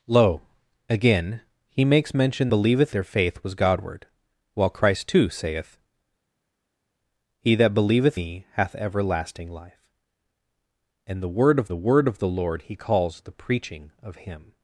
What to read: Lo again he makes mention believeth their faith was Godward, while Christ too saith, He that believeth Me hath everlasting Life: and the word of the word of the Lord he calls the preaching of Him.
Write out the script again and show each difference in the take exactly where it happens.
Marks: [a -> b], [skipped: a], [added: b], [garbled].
Lo again he makes mention believeth their faith was Godward, while Christ too saith, He that believeth Me hath everlasting Life: and the word of the word of the Lord he calls the preaching of Him.